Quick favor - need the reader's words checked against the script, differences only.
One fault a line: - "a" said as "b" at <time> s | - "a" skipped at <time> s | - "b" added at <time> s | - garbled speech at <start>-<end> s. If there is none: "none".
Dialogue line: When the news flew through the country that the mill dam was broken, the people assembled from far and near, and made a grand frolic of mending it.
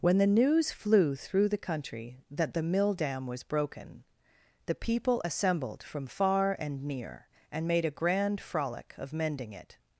none